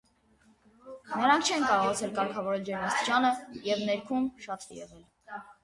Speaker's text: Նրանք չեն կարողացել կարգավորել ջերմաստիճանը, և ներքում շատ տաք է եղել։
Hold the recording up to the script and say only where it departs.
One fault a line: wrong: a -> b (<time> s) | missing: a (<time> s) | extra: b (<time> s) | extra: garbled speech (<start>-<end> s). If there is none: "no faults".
missing: տաք (4.7 s)